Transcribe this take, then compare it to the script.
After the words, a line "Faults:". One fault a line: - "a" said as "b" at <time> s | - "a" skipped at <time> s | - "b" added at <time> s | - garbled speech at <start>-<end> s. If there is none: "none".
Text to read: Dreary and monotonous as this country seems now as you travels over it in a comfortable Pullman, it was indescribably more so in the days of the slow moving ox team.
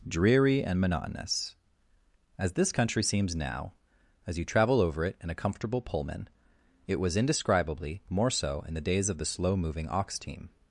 Dreary and monotonous as this country seems now as you travel over it in a comfortable Pullman, it was indescribably more so in the days of the slow moving ox team.
Faults:
- "travels" said as "travel" at 4.5 s